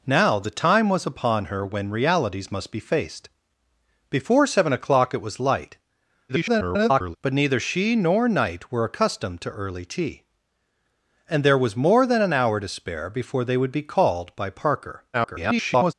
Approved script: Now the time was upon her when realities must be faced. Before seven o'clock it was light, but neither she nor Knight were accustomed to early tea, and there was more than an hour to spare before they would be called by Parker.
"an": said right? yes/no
yes